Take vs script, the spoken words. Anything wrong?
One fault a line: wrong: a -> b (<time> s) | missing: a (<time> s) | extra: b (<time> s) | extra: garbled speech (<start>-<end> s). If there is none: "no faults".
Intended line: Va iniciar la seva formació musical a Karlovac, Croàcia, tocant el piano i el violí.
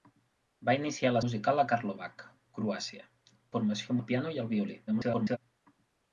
missing: seva formació (1.2 s)
wrong: tocant -> formació (3.5 s)
extra: garbled speech (4.9-5.4 s)